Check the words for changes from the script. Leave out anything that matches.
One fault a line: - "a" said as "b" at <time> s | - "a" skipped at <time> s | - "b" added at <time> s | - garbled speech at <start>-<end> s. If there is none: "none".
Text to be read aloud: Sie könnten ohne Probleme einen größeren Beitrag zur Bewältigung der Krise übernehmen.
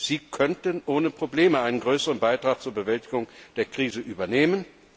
none